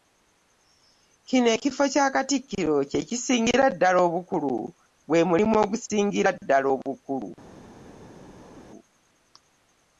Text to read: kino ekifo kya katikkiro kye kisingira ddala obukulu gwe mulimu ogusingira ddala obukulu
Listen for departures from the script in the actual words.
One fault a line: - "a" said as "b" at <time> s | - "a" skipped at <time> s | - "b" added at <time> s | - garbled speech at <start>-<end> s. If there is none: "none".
none